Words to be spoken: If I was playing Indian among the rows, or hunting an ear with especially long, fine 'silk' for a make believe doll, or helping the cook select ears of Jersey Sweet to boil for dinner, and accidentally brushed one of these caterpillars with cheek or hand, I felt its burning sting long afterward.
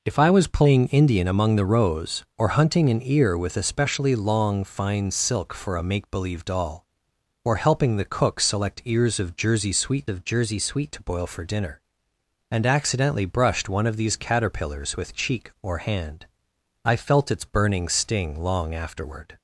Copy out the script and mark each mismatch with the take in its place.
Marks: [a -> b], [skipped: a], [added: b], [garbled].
If I was playing Indian among the rows, or hunting an ear with especially long, fine 'silk' for a make believe doll, or helping the cook select ears of Jersey Sweet [added: of Jersey Sweet] to boil for dinner, and accidentally brushed one of these caterpillars with cheek or hand, I felt its burning sting long afterward.